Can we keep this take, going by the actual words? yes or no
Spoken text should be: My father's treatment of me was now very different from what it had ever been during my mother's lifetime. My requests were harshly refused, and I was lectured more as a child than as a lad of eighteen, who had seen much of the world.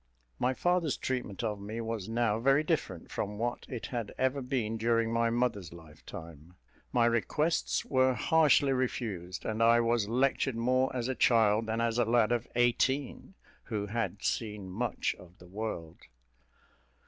yes